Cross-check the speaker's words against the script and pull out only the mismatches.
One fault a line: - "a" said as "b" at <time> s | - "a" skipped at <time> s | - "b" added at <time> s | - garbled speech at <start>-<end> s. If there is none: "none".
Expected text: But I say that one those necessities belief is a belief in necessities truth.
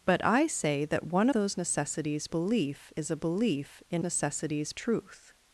none